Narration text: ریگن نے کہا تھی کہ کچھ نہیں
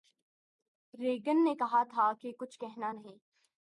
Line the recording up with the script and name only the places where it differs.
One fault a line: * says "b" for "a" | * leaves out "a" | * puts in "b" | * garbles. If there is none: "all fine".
* says "تھا" for "تھی"
* puts in "کہنا"